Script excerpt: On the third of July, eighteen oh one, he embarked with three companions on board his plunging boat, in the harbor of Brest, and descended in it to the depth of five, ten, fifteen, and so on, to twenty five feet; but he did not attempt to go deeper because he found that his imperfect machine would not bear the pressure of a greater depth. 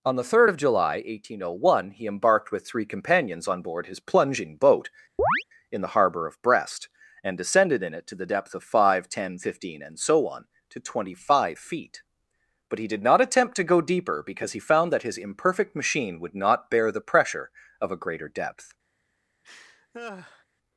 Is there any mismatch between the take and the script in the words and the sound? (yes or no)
yes